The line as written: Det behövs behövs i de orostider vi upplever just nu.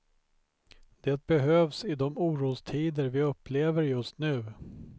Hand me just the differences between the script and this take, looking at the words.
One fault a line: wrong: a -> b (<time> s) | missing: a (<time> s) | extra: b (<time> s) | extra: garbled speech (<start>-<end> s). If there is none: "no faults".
missing: behövs (1.9 s)